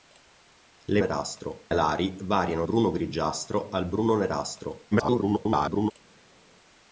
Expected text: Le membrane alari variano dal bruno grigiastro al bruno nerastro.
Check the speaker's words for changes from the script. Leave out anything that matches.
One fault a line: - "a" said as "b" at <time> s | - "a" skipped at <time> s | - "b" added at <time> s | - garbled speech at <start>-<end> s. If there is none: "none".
- "membrane" said as "nerastro" at 1.0 s
- "dal" skipped at 2.7 s
- garbled speech at 4.9-5.9 s